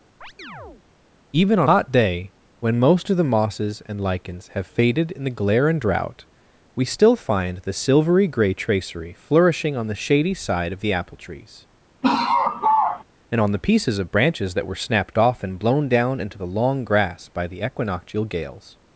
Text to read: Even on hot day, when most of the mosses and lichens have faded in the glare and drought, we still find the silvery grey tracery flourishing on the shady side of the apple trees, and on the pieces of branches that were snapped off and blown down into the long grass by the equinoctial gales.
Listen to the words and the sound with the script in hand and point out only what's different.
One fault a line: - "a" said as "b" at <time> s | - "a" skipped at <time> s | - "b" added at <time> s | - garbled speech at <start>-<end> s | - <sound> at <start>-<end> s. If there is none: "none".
- chirp at 0.2-0.8 s
- laugh at 12.0-13.0 s